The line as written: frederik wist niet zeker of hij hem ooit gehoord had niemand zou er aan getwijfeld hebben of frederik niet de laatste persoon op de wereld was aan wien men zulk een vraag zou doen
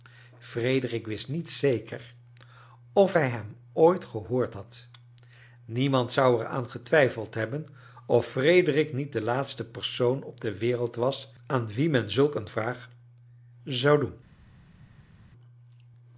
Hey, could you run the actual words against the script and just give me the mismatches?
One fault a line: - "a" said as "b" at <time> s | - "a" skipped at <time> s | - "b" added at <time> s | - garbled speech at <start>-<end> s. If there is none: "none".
none